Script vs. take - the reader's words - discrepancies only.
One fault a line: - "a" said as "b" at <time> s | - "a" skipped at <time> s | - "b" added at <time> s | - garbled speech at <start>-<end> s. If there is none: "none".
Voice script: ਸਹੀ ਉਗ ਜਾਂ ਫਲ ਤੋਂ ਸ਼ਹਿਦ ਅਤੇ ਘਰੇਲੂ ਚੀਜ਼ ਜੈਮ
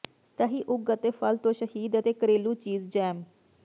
- "ਜਾਂ" said as "ਅਤੇ" at 0.9 s